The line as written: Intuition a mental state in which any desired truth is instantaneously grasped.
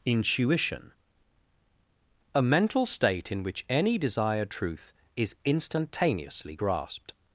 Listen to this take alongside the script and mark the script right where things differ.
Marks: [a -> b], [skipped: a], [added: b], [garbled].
Intuition a mental state in which any desired truth is instantaneously grasped.